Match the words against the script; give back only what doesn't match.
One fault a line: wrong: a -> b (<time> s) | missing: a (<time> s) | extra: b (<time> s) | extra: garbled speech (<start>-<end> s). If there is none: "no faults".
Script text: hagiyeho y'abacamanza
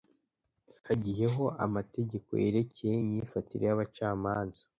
extra: amategeko yerekeye imyifatire (1.6 s)